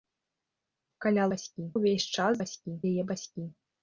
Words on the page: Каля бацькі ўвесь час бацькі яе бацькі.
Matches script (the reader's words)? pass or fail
pass